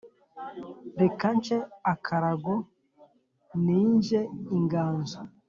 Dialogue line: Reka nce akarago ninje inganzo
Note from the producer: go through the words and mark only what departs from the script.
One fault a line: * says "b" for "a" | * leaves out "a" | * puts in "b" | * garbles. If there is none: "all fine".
all fine